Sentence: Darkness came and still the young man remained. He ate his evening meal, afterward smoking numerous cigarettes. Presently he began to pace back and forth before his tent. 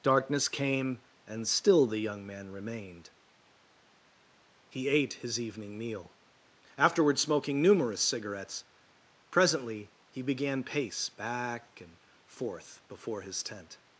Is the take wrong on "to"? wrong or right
wrong